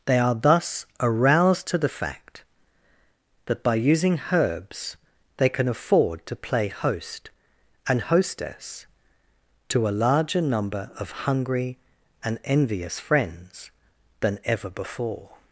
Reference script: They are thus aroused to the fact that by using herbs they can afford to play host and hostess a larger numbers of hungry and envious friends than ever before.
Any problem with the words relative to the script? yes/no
yes